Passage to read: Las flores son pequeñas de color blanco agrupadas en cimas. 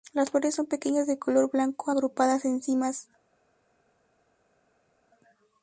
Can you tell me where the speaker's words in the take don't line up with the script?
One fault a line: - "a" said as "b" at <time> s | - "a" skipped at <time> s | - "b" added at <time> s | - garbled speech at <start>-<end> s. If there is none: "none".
none